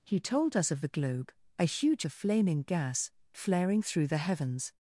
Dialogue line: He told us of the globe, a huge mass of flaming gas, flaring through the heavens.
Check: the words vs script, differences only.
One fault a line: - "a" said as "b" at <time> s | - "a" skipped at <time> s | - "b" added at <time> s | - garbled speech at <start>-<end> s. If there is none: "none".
- "mass" skipped at 2.1 s